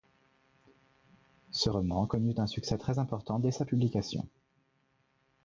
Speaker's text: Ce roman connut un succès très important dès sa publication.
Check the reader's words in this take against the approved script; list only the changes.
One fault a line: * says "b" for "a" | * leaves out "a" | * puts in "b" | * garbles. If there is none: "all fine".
all fine